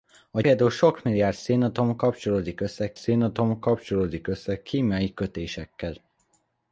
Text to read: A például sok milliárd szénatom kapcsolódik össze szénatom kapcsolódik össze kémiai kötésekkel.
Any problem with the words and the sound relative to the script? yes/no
no